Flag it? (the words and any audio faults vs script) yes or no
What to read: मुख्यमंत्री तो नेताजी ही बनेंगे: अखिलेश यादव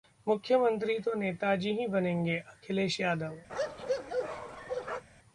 yes